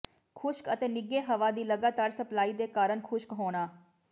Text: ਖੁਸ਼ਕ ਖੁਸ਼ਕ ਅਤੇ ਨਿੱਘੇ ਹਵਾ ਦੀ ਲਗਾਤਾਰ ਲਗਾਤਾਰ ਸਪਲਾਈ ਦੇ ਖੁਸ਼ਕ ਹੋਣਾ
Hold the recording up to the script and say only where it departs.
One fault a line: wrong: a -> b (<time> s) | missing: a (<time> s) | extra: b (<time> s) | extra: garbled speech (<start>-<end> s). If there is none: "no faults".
missing: ਖੁਸ਼ਕ (0.7 s)
missing: ਲਗਾਤਾਰ (2.1 s)
extra: ਕਾਰਨ (2.7 s)